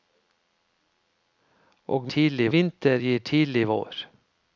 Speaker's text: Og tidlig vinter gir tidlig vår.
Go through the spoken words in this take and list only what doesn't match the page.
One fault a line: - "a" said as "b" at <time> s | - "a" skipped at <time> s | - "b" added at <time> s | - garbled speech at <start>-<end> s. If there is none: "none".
none